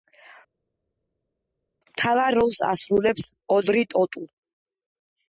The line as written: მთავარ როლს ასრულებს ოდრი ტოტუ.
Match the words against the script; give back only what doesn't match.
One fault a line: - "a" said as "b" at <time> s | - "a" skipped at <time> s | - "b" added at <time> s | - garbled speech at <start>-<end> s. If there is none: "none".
none